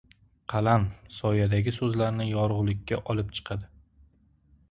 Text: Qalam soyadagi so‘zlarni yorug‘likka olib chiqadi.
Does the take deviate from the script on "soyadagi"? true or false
false